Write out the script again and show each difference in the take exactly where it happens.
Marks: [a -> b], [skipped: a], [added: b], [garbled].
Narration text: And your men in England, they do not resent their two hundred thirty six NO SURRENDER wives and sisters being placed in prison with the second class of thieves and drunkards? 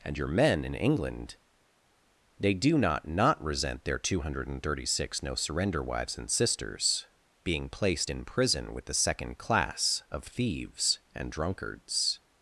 And your men in England, they do not [added: not] resent their two hundred thirty six NO SURRENDER wives and sisters being placed in prison with the second class of thieves and drunkards?